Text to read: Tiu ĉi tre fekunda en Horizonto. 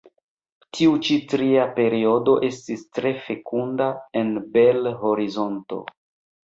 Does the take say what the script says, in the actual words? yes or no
no